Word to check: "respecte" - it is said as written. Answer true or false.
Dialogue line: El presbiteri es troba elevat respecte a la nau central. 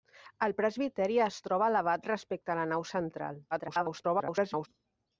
true